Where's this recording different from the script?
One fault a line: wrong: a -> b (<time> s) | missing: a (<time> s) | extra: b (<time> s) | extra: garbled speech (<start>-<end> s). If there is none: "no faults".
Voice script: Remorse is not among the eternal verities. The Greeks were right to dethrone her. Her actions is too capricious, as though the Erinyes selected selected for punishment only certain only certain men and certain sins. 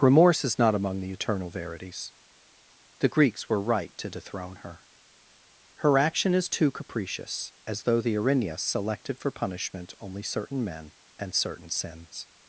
wrong: actions -> action (6.0 s)
missing: selected (9.2 s)
missing: only certain (10.6 s)